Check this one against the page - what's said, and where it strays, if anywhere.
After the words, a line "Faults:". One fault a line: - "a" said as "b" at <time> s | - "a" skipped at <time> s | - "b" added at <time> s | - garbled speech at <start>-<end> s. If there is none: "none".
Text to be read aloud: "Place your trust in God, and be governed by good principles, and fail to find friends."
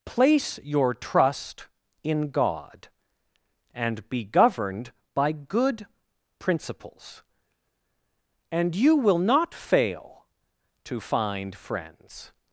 "Place your trust in God, and be governed by good principles, and you will not fail to find friends."
Faults:
- "you will not" added at 8.8 s